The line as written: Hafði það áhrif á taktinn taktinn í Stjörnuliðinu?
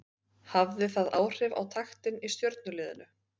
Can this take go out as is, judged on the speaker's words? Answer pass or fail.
fail